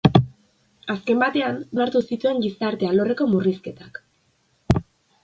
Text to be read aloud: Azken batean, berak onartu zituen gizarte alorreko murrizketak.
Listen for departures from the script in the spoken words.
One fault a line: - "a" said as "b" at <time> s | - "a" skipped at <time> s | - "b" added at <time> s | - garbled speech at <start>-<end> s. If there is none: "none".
- "berak" skipped at 1.6 s